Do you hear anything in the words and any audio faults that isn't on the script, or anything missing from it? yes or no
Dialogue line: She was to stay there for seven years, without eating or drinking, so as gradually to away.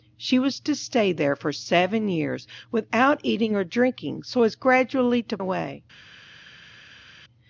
no